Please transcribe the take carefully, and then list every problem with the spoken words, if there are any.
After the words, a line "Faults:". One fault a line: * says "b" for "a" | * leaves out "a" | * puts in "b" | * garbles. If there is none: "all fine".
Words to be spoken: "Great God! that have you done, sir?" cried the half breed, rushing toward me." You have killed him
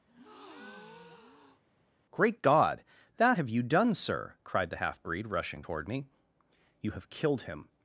"Great God! that have you done, sir?" cried the half breed, rushing toward me." You have killed him
Faults:
all fine